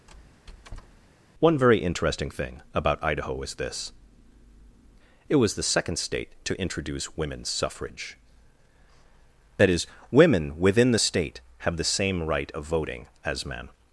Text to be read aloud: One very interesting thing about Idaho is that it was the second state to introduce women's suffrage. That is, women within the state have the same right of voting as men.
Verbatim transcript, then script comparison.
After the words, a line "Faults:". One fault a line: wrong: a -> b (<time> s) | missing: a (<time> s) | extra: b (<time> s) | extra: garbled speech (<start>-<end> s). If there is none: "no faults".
One very interesting thing about Idaho is this it was the second state to introduce women's suffrage. That is, women within the state have the same right of voting as men.
Faults:
wrong: that -> this (3.5 s)